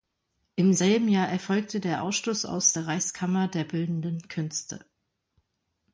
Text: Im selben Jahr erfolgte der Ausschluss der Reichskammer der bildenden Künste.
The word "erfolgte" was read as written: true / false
true